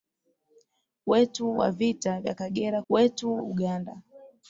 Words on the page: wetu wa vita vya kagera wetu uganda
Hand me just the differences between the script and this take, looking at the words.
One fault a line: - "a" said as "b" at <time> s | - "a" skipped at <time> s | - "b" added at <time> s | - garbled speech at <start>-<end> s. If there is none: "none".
none